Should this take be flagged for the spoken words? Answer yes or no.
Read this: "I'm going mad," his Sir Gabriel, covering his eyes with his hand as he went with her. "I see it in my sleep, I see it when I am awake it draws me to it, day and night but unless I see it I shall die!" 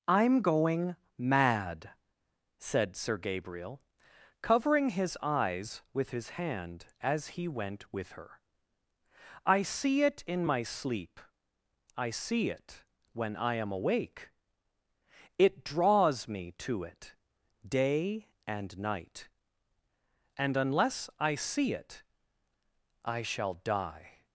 yes